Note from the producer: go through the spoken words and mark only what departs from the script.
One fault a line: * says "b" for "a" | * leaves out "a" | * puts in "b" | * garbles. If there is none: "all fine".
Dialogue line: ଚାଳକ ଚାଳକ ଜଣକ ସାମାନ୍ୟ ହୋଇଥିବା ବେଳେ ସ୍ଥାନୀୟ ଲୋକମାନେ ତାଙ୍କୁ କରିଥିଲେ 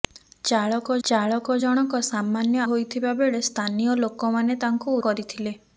all fine